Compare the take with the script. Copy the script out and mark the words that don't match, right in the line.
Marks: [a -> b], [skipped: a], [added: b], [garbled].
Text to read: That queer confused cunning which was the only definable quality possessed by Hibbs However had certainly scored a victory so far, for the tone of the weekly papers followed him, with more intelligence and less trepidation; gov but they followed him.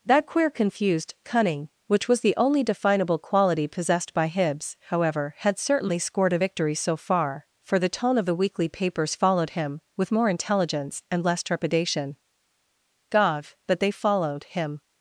That queer confused cunning which was the only definable quality possessed by Hibbs However had certainly scored a victory so far, for the tone of the weekly papers followed him, with more intelligence and less trepidation; gov but they followed him.